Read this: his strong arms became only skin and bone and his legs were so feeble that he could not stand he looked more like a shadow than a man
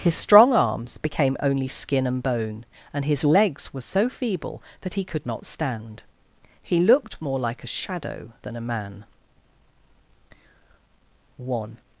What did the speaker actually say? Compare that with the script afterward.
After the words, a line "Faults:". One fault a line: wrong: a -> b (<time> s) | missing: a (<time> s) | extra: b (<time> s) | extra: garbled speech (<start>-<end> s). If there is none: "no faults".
his strong arms became only skin and bone and his legs were so feeble that he could not stand he looked more like a shadow than a man one
Faults:
extra: one (11.4 s)